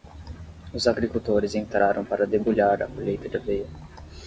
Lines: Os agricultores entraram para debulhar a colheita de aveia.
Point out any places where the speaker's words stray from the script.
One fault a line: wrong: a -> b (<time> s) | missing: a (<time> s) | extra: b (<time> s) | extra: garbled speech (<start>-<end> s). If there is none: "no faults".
no faults